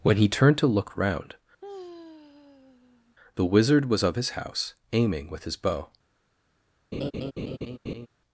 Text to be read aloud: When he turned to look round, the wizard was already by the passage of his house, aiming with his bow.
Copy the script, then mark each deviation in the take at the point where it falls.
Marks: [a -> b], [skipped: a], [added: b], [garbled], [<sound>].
When he turned to look round, [sigh] the wizard was [skipped: already by the passage] of his house, aiming with his bow. [laugh]